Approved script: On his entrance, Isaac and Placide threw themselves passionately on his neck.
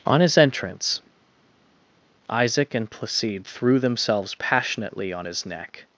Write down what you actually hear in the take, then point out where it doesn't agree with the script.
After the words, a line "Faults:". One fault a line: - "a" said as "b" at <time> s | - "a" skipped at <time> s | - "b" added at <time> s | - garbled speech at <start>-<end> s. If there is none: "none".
On his entrance, Isaac and Placide threw themselves passionately on his neck.
Faults:
none